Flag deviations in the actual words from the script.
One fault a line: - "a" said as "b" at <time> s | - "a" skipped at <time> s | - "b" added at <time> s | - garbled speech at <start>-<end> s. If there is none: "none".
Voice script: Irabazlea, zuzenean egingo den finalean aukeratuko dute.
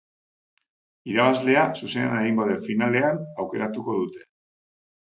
none